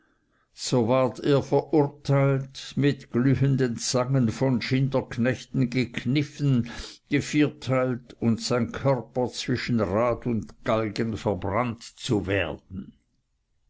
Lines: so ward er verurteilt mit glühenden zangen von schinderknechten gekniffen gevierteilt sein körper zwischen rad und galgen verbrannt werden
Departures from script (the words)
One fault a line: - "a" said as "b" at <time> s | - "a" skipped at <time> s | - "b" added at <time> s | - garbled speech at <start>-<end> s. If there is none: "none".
- "und" added at 8.2 s
- "zu" added at 11.8 s